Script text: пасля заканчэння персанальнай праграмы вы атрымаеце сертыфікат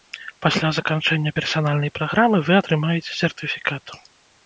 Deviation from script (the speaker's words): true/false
false